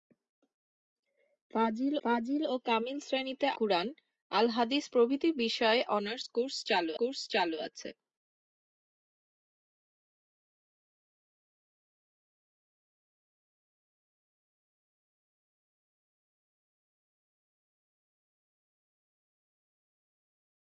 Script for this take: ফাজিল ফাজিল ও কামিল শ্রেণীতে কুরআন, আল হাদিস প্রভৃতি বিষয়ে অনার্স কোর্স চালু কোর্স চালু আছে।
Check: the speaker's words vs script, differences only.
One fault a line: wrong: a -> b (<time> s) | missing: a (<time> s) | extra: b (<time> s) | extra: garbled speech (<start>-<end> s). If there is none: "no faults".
no faults